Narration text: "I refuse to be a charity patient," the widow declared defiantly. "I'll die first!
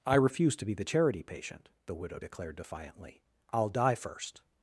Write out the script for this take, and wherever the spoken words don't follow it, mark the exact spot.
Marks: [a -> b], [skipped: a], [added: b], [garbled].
"I refuse to be [a -> the] charity patient," the widow declared defiantly. "I'll die first!